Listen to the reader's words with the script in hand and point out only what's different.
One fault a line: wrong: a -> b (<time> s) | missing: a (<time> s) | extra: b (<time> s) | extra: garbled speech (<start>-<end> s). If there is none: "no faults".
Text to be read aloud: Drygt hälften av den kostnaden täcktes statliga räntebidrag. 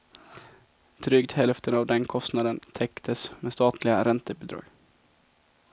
extra: med (3.4 s)